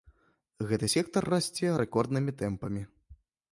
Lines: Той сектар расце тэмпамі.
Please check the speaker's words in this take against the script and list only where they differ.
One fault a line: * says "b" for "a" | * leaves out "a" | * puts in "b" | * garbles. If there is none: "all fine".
* says "Гэты" for "Той"
* puts in "рэкорднымі"